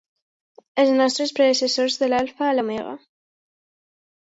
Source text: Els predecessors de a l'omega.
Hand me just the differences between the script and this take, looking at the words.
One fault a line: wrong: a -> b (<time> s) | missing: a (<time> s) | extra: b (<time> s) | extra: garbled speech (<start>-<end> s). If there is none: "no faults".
extra: nostres (1.0 s)
extra: l'alfa (2.1 s)